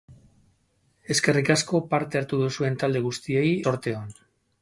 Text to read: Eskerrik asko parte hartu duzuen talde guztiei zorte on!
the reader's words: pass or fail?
pass